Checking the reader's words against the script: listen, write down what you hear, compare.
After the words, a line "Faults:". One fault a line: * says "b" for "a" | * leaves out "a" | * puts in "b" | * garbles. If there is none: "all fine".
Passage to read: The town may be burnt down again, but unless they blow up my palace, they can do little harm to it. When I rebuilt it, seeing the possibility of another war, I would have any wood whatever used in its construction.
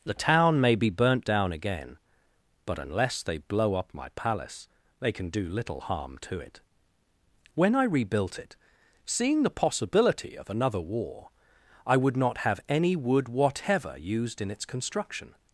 The town may be burnt down again, but unless they blow up my palace, they can do little harm to it. When I rebuilt it, seeing the possibility of another war, I would not have any wood whatever used in its construction.
Faults:
* puts in "not"